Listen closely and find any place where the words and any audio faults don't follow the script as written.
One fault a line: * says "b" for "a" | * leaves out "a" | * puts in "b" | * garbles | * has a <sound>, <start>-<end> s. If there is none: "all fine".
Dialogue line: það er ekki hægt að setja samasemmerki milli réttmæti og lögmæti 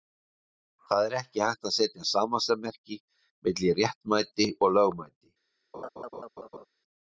* has a laugh, 5.7-6.7 s